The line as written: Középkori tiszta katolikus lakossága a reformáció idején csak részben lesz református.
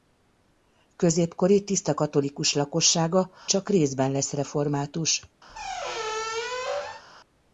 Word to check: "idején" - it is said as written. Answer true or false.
false